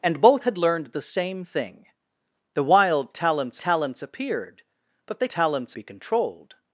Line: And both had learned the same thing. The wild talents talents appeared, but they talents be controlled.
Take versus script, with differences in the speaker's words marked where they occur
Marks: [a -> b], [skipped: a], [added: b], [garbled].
And both had learned the same thing. The wild talents talents appeared, but they talents be controlled.